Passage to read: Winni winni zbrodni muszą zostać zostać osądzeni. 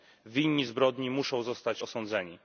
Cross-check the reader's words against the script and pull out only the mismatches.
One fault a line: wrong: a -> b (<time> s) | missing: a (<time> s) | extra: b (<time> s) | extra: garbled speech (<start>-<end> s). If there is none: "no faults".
missing: winni (0.7 s)
missing: zostać (1.8 s)